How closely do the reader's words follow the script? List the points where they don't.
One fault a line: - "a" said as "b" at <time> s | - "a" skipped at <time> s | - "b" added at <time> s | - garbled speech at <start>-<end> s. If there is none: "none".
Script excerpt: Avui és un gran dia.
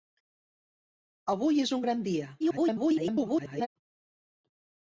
- garbled speech at 2.4-3.7 s